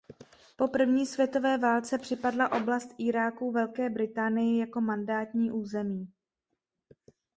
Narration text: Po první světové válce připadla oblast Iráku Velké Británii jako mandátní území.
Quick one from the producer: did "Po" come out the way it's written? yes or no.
yes